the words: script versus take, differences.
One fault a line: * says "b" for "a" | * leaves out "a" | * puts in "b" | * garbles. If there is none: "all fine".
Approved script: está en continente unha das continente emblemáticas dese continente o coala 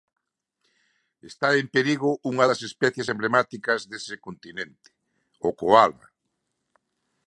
* says "perigo" for "continente"
* says "especies" for "continente"